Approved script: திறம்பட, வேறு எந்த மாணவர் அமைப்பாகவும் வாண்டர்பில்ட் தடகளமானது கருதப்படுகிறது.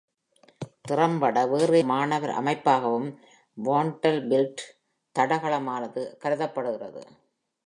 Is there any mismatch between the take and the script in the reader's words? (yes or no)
yes